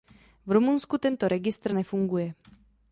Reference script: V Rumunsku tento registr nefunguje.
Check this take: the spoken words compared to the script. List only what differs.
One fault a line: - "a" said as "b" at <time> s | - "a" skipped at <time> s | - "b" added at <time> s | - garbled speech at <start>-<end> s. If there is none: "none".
none